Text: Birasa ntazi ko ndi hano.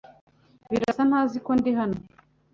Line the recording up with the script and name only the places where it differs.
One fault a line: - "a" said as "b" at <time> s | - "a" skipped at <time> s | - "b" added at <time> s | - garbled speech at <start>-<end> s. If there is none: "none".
none